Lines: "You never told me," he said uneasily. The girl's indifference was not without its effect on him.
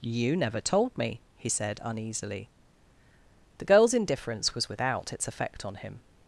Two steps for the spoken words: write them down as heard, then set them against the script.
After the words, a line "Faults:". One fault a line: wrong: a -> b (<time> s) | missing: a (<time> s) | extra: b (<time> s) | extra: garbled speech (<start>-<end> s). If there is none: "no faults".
"You never told me," he said uneasily. The girl's indifference was without its effect on him.
Faults:
missing: not (4.7 s)